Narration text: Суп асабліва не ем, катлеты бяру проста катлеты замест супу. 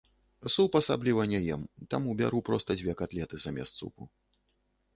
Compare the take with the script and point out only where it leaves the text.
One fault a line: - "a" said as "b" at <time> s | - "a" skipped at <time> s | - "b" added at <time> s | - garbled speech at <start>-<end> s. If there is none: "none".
- "катлеты" said as "таму" at 1.9 s
- "дзве" added at 2.8 s